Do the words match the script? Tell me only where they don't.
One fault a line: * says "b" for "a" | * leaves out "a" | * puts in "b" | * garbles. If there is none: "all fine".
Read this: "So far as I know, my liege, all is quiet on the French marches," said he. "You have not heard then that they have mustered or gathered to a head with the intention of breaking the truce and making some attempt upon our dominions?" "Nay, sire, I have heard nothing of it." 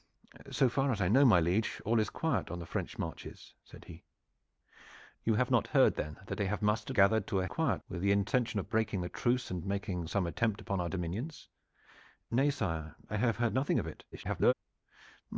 * leaves out "or"
* says "quiet" for "head"
* garbles